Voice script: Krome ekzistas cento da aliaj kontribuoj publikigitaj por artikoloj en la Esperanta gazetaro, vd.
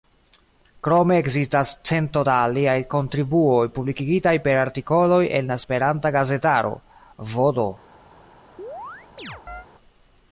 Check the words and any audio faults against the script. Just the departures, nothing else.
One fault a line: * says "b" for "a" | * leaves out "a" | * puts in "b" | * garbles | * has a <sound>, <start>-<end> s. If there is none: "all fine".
* says "per" for "por"
* has a chirp, 8.6-9.7 s